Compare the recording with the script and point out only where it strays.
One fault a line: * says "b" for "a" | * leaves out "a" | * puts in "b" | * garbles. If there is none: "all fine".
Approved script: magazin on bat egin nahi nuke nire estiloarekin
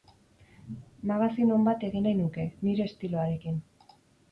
all fine